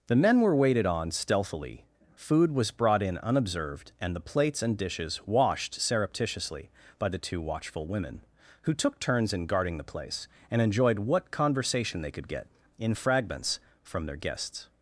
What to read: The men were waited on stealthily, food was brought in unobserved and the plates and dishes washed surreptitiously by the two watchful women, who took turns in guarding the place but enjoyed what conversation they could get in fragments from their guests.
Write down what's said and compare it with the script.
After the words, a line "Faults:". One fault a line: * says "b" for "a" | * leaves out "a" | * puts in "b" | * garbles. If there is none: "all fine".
The men were waited on stealthily, food was brought in unobserved and the plates and dishes washed surreptitiously by the two watchful women, who took turns in guarding the place and enjoyed what conversation they could get in fragments from their guests.
Faults:
* says "and" for "but"